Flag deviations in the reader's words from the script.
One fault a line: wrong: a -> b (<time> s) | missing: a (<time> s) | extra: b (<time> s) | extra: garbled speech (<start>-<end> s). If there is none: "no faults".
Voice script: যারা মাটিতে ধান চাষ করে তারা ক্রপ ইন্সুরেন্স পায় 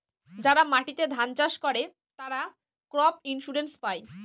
no faults